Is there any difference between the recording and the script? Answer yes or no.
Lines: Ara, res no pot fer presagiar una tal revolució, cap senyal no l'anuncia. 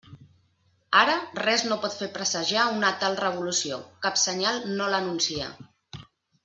no